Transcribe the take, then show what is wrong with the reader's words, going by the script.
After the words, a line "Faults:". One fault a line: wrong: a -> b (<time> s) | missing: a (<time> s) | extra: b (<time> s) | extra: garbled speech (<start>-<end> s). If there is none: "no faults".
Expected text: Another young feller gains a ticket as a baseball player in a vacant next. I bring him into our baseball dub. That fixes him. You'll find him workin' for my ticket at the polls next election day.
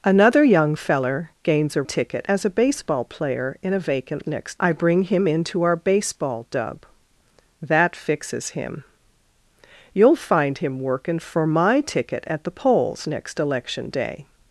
Another young feller gains a ticket as a baseball player in a vacant next. I bring him into our baseball dub. That fixes him. You'll find him workin' for my ticket at the polls next election day.
Faults:
no faults